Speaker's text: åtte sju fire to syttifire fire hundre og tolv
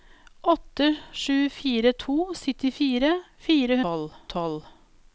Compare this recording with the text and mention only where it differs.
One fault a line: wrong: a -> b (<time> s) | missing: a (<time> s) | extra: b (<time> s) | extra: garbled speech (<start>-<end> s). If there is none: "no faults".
wrong: hundre -> tolv (3.8 s)